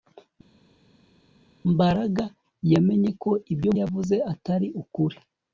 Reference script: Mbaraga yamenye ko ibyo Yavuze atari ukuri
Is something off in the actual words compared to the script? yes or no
no